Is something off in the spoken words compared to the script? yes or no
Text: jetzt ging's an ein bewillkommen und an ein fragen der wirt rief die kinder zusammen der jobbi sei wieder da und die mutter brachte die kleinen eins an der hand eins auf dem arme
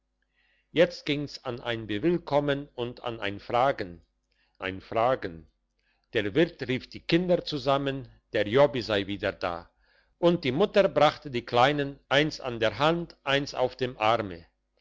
yes